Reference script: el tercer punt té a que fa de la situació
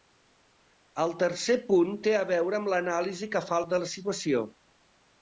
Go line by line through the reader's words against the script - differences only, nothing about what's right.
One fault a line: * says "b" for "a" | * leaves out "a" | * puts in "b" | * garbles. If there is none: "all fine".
* puts in "veure amb l'anàlisi"